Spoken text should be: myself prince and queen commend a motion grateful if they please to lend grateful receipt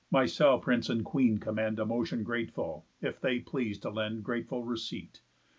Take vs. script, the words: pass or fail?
pass